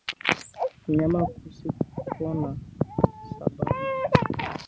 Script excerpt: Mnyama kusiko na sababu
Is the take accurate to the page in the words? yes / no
yes